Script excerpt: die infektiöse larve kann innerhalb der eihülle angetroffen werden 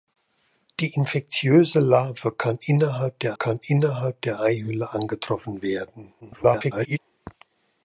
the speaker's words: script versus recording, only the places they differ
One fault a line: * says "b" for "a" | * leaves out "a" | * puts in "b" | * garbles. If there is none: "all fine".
* puts in "kann innerhalb der"
* garbles